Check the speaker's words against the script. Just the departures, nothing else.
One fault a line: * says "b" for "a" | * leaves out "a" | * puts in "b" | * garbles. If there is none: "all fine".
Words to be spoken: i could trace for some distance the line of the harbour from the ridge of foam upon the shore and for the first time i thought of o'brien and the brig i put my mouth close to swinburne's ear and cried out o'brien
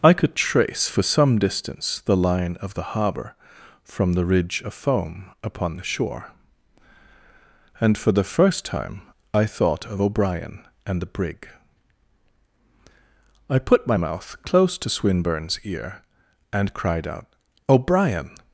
all fine